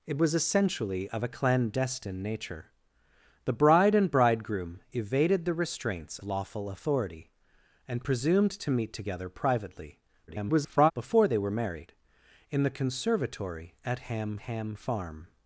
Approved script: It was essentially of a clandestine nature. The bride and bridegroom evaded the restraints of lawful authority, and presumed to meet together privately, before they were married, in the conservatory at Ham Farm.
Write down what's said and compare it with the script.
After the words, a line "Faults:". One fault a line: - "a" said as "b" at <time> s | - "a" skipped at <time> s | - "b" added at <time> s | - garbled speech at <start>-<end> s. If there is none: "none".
It was essentially of a clandestine nature. The bride and bridegroom evaded the restraints lawful authority, and presumed to meet together privately, [garbled] before they were married, in the conservatory at Ham Ham Farm.
Faults:
- "of" skipped at 6.2 s
- garbled speech at 10.3-10.9 s
- "Ham" added at 14.4 s